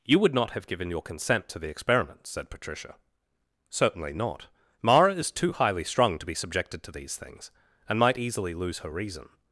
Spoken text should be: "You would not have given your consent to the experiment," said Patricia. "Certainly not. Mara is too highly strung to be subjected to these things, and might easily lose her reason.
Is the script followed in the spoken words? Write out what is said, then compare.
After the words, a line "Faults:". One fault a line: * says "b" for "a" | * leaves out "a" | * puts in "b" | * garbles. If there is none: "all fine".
"You would not have given your consent to the experiment," said Patricia. "Certainly not. Mara is too highly strung to be subjected to these things, and might easily lose her reason.
Faults:
all fine